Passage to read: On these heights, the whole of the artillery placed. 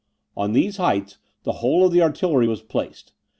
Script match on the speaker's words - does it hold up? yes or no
no